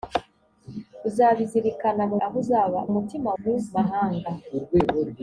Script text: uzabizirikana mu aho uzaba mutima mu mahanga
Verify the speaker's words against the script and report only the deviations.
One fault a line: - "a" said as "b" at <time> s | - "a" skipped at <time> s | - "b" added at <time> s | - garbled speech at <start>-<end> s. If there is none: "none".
none